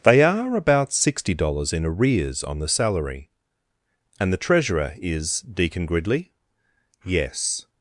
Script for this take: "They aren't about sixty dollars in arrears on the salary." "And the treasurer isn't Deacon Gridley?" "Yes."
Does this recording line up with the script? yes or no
no